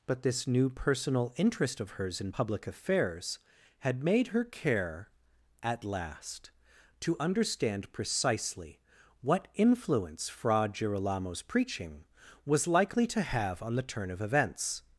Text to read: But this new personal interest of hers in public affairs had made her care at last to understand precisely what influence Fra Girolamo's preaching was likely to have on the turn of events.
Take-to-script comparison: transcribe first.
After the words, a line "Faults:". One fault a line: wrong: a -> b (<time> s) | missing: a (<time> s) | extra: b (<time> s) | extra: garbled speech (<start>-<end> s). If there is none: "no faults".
But this new personal interest of hers in public affairs had made her care at last to understand precisely what influence Fra Girolamo's preaching was likely to have on the turn of events.
Faults:
no faults